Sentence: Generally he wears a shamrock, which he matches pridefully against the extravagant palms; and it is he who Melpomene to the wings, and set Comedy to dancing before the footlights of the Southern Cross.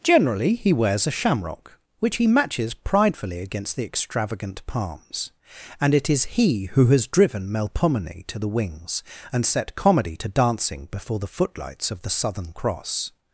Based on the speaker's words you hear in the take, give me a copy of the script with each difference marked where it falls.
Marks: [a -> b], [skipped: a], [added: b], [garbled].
Generally he wears a shamrock, which he matches pridefully against the extravagant palms; and it is he who [added: has driven] Melpomene to the wings, and set Comedy to dancing before the footlights of the Southern Cross.